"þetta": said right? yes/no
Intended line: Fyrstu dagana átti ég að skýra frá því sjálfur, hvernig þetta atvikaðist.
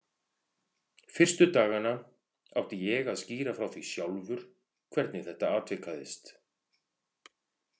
yes